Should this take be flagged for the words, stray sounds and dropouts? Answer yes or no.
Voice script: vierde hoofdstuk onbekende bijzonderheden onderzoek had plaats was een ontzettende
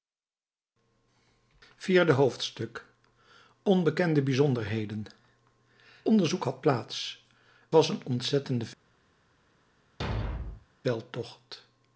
yes